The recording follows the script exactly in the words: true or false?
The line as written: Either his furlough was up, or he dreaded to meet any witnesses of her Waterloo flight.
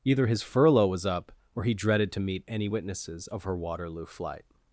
true